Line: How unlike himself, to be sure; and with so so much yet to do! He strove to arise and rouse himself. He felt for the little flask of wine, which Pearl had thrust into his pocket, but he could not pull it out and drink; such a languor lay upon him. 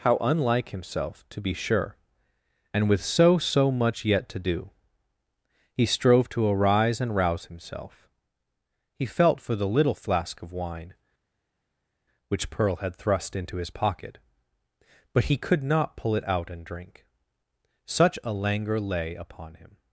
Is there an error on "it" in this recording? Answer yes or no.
no